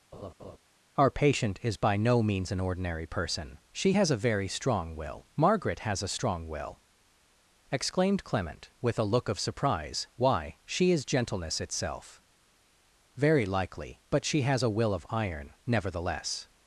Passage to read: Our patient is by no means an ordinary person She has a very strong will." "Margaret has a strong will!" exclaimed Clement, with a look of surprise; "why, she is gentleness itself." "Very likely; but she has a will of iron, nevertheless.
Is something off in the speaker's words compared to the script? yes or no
no